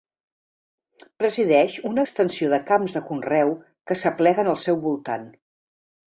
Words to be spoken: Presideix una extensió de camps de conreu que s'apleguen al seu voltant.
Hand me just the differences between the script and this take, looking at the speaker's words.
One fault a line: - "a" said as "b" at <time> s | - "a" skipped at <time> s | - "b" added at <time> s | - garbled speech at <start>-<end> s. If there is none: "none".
none